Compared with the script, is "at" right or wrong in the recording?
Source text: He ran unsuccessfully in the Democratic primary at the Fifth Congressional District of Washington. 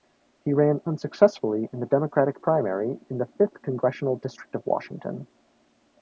wrong